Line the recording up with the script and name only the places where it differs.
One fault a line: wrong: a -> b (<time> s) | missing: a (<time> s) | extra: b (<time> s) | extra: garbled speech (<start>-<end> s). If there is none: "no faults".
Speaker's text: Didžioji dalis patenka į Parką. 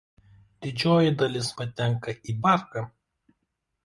no faults